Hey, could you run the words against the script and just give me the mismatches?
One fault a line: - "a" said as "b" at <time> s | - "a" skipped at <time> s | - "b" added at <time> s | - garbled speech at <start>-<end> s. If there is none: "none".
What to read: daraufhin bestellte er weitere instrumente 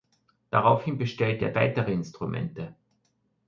none